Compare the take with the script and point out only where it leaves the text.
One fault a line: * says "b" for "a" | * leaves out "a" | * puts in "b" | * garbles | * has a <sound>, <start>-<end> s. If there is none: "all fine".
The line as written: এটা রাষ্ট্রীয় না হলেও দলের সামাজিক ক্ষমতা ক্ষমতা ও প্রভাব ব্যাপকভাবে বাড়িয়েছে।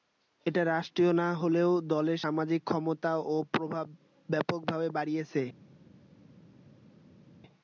* leaves out "ক্ষমতা"